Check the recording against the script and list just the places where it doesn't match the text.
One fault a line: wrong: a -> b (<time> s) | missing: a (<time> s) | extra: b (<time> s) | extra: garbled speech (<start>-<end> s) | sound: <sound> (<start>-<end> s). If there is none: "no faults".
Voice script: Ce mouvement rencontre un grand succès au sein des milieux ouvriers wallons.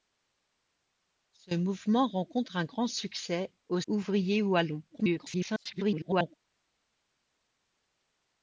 missing: sein des milieux (3.8 s)
extra: garbled speech (4.9-6.4 s)